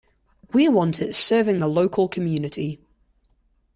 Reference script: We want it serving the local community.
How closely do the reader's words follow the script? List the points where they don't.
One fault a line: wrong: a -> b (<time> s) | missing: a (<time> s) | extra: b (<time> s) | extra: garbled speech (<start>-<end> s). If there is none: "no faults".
no faults